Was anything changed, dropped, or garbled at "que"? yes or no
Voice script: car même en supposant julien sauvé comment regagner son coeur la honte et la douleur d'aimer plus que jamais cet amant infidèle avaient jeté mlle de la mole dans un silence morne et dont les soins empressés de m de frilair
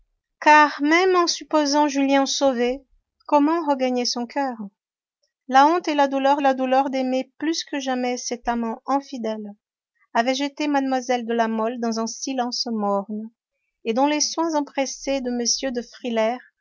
no